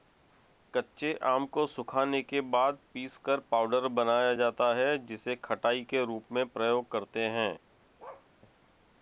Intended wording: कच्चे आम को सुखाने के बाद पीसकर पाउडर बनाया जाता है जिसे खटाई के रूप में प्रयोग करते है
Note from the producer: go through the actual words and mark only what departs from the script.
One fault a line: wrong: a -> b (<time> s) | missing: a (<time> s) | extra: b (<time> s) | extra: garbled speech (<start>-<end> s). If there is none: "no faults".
no faults